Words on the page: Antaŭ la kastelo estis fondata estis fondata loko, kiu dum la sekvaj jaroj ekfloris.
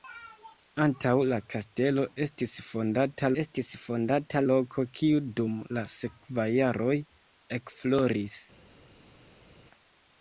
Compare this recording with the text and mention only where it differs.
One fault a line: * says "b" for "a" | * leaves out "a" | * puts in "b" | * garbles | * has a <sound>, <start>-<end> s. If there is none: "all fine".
all fine